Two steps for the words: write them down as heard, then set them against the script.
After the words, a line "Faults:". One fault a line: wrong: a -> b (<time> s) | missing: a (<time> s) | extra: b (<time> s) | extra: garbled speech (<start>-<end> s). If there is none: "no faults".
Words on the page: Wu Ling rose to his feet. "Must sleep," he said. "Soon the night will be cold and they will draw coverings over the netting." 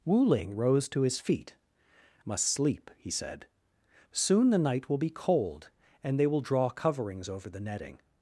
Wu Ling rose to his feet. "Must sleep," he said. "Soon the night will be cold and they will draw coverings over the netting."
Faults:
no faults